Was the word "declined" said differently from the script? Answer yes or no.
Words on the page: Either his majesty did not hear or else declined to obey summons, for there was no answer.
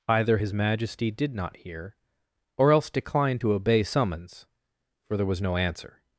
no